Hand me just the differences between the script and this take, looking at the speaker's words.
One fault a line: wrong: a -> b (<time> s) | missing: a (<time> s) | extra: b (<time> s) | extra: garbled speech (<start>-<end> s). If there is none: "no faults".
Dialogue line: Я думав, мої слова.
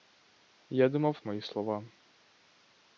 no faults